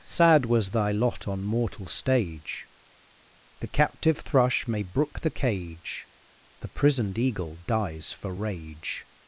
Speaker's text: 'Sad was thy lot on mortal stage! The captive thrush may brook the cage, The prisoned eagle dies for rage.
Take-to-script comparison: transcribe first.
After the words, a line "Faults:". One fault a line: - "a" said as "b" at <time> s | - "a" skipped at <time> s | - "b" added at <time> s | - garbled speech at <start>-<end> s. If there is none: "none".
'Sad was thy lot on mortal stage! The captive thrush may brook the cage, The prisoned eagle dies for rage.
Faults:
none